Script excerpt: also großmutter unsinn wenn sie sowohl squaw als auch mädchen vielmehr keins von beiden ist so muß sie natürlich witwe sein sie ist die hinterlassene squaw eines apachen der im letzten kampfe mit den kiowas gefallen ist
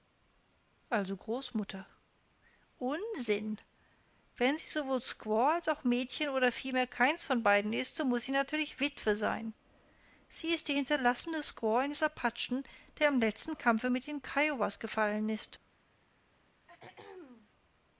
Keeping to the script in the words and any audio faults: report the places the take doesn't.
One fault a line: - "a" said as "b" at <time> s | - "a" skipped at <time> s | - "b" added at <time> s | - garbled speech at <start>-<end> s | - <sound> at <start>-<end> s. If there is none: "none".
- "oder" added at 6.3 s
- throat clearing at 16.7-17.5 s